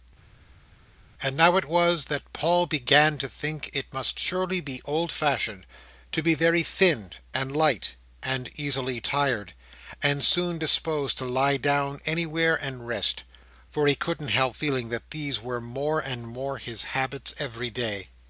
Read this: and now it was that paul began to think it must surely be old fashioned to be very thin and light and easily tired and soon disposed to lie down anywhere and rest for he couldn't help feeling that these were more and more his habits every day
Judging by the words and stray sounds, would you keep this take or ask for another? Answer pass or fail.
pass